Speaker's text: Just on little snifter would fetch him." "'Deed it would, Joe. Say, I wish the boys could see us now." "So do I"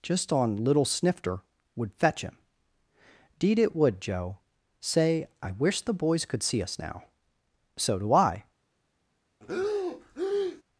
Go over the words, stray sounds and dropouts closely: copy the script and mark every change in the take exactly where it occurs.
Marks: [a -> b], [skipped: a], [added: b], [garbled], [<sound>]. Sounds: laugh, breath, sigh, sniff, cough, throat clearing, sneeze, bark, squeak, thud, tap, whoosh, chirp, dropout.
Just on little snifter would fetch him." "'Deed it would, Joe. Say, I wish the boys could see us now." "So do I" [breath]